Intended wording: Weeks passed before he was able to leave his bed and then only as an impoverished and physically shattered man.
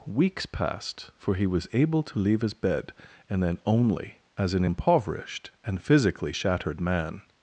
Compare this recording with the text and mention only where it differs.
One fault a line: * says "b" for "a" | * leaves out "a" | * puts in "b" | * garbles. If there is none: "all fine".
* says "for" for "before"